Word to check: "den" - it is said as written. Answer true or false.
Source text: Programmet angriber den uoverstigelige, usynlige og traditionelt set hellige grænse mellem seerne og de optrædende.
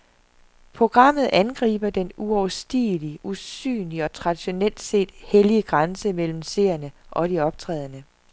true